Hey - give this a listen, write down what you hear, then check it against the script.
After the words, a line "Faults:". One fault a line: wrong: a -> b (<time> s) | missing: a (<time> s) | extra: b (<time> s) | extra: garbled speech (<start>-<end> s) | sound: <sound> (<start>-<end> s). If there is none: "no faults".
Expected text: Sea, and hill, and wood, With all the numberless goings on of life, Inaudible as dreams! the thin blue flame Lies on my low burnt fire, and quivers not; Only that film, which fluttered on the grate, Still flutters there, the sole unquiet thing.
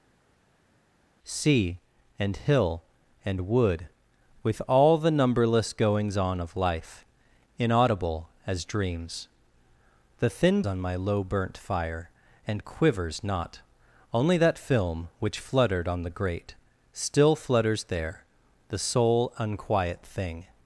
Sea, and hill, and wood, With all the numberless goings on of life, Inaudible as dreams! the thin on my low burnt fire, and quivers not; Only that film, which fluttered on the grate, Still flutters there, the sole unquiet thing.
Faults:
missing: blue flame Lies (10.6 s)